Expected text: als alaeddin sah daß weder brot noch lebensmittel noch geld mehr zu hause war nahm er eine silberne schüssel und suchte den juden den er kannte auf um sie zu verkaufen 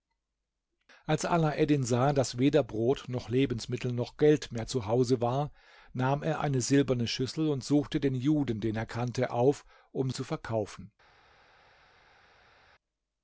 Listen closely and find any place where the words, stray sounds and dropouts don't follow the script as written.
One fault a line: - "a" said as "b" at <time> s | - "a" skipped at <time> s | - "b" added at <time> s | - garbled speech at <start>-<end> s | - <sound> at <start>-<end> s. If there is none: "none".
- "sie" skipped at 10.1 s